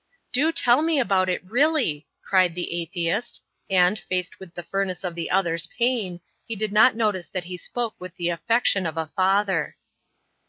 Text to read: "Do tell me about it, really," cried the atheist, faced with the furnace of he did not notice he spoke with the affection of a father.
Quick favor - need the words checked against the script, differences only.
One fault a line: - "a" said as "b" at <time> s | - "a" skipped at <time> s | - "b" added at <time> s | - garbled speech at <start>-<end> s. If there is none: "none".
- "and" added at 3.7 s
- "the other's pain" added at 5.1 s
- "that" added at 7.3 s